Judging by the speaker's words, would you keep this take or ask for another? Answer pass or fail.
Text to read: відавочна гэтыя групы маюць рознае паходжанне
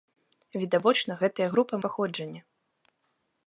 fail